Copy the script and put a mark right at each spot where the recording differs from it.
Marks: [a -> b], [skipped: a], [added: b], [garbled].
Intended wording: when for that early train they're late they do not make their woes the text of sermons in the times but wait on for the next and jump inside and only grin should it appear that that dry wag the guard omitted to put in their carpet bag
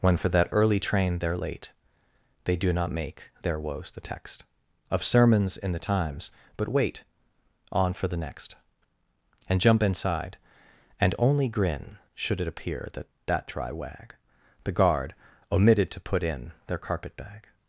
when for that early train they're late they do not make their woes the text of sermons in the times but wait on for the next and jump inside and only grin should it appear that that dry wag the guard omitted to put in their carpet bag